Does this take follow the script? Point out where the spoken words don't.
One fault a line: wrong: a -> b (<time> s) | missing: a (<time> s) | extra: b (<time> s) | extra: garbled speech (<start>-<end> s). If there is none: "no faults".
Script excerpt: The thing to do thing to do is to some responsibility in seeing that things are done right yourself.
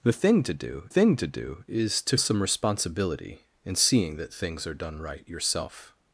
no faults